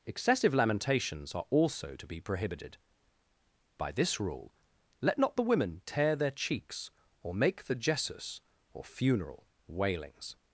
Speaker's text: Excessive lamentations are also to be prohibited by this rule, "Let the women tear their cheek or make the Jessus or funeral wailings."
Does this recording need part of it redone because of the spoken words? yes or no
yes